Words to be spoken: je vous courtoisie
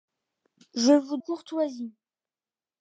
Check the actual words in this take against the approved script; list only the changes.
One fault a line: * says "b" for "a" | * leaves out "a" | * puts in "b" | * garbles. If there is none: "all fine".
all fine